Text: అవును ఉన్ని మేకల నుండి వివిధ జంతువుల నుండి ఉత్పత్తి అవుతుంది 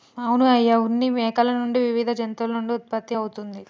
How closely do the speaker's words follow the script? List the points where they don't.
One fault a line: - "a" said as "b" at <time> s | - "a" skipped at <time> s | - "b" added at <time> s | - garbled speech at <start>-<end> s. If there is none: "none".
- "అయ్య" added at 0.5 s